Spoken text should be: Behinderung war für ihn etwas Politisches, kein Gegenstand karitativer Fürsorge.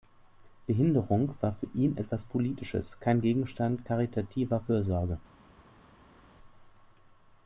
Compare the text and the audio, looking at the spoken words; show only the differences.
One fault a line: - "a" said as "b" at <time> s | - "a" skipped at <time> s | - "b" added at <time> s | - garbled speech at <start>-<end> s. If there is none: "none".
none